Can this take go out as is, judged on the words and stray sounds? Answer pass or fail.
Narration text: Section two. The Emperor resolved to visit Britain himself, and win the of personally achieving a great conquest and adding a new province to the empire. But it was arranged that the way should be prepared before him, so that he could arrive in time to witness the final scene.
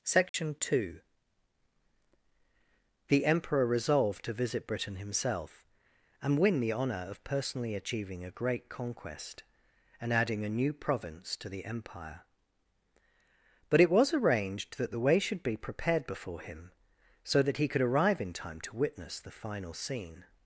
fail